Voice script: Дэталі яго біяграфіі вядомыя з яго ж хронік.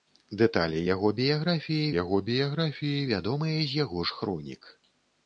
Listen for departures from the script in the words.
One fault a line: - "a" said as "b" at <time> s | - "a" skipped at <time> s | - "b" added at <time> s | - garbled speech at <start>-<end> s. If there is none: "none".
- "яго біяграфіі" added at 2.0 s